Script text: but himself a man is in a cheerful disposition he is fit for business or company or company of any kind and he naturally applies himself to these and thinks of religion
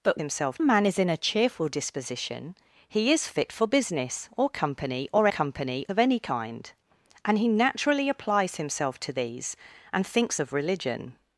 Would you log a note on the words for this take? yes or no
no